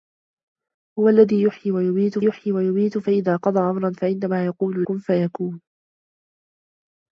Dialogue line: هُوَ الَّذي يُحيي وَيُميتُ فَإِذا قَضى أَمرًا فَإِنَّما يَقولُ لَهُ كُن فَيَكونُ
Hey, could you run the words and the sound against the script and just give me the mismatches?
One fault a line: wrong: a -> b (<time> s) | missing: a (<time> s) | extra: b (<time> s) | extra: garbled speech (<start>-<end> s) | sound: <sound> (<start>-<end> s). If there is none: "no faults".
extra: يُحيي وَيُميتُ (2.2 s)
missing: لَهُ (4.9 s)